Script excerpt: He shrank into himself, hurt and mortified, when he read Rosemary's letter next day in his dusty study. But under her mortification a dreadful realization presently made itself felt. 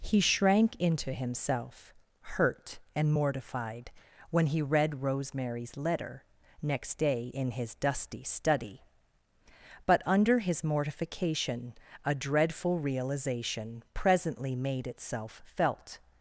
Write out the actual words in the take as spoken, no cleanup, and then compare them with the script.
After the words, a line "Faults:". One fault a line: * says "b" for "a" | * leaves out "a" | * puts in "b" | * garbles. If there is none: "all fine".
He shrank into himself, hurt and mortified, when he read Rosemary's letter next day in his dusty study. But under his mortification a dreadful realization presently made itself felt.
Faults:
* says "his" for "her"